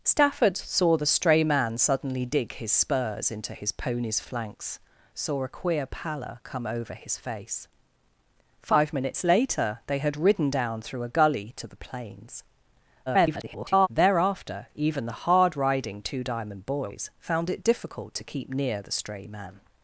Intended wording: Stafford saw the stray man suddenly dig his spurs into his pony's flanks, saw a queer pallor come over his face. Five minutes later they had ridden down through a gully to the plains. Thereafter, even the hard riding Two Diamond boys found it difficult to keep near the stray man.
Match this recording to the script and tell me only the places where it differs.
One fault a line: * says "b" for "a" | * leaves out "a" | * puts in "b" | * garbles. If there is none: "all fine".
* garbles